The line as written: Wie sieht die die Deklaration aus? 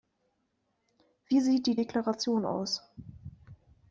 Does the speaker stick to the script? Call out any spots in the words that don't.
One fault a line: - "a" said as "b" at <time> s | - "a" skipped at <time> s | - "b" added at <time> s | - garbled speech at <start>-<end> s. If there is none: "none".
- "die" skipped at 1.8 s